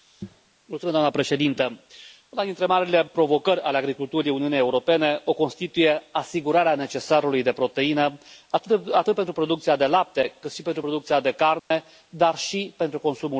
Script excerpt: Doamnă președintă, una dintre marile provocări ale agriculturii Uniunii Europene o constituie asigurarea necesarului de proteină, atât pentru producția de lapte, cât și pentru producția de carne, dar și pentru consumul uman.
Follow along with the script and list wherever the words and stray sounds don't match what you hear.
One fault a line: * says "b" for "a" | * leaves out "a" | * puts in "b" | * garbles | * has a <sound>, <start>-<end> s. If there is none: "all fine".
* has a dropout, 11.6-11.7 s